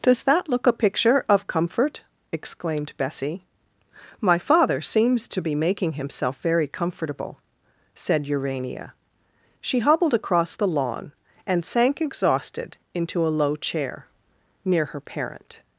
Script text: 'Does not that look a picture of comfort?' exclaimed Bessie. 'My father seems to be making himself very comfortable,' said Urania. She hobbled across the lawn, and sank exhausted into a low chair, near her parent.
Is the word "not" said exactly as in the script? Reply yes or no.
no